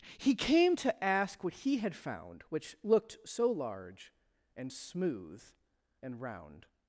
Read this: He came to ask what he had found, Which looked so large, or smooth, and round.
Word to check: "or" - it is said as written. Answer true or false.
false